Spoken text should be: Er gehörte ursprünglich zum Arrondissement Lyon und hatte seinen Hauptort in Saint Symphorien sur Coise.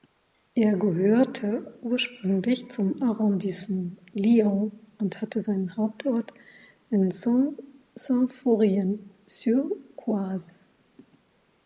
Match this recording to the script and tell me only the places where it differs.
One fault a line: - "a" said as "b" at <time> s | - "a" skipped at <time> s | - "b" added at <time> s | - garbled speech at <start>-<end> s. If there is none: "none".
none